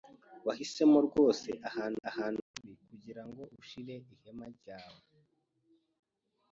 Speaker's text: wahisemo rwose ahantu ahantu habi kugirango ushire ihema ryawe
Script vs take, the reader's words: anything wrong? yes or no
no